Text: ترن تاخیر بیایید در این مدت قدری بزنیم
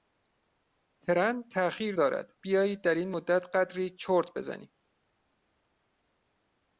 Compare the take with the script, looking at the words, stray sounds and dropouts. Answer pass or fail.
fail